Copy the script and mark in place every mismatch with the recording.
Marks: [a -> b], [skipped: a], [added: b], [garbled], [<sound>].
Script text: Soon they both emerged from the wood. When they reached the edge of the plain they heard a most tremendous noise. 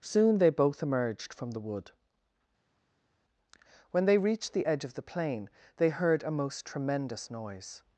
Soon they both emerged from the wood. When they reached the edge of the plain they heard a most tremendous noise.